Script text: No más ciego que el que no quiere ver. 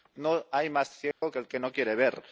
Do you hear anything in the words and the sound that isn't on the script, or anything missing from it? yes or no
yes